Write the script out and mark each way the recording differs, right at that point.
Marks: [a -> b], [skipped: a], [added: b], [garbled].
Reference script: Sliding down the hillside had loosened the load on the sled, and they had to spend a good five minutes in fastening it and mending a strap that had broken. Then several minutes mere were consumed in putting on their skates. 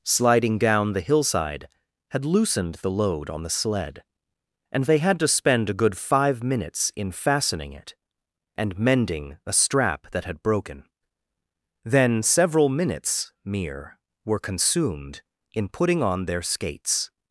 Sliding down the hillside had loosened the load on the sled, and they had to spend a good five minutes in fastening it and mending a strap that had broken. Then several minutes mere were consumed in putting on their skates.